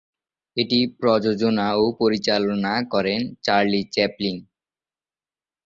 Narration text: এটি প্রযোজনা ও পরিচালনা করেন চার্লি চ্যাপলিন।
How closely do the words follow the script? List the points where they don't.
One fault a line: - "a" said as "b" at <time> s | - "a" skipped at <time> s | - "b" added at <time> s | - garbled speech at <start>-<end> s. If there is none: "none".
none